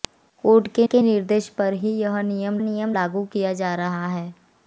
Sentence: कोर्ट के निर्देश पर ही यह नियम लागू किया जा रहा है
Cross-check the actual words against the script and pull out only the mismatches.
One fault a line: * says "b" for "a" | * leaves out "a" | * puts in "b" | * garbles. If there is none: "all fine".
* puts in "के"
* puts in "नियम"